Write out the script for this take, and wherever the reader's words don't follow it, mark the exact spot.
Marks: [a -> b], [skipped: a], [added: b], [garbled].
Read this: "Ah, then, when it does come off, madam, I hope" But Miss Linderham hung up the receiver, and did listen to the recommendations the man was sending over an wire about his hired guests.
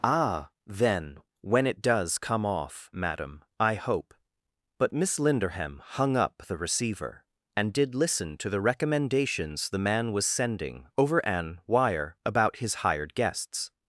"Ah, then, when it does come off, madam, I hope" But Miss Linderham hung up the receiver, and did listen to the recommendations the man was sending over an wire about his hired guests.